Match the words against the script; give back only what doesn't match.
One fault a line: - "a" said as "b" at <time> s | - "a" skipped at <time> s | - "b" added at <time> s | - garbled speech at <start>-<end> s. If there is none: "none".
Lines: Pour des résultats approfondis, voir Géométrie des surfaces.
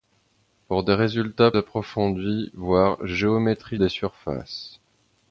none